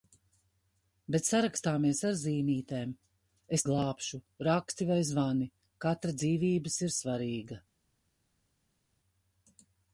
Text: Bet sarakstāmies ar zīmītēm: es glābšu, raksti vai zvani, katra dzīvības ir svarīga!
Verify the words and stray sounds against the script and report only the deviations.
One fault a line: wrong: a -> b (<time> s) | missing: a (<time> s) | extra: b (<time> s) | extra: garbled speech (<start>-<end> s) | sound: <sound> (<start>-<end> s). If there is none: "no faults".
no faults